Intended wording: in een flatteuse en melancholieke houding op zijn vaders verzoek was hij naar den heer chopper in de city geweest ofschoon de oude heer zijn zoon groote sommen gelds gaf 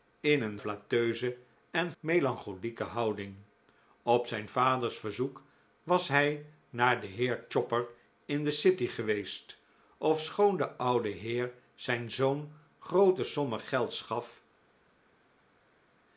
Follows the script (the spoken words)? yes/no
yes